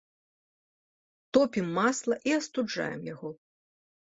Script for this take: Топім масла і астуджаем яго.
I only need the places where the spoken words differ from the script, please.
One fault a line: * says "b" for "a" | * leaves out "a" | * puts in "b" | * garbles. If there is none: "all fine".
all fine